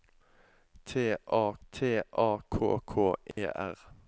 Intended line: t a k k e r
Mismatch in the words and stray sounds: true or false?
true